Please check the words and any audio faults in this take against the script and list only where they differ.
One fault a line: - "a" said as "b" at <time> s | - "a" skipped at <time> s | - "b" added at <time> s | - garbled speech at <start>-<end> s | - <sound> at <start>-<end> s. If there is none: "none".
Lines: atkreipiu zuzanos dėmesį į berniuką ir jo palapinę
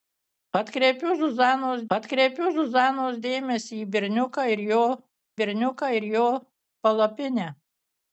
- "atkreipiu zuzanos" added at 2.0 s
- "berniuką ir jo" added at 5.4 s